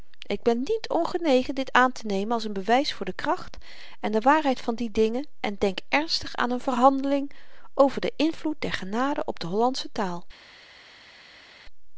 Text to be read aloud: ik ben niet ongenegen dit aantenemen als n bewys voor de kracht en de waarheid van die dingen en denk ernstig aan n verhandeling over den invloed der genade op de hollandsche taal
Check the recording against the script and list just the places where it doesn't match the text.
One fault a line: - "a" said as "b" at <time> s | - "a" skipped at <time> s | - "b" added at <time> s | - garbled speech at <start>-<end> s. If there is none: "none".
none